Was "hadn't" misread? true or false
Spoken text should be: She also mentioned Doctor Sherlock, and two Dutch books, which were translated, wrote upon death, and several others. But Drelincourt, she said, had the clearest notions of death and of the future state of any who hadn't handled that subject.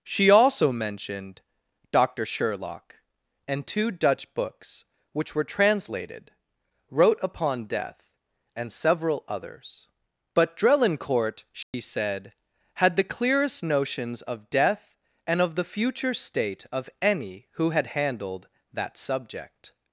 true